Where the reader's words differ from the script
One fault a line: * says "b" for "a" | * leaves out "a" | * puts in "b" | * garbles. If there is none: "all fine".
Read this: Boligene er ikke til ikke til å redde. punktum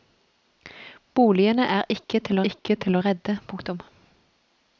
all fine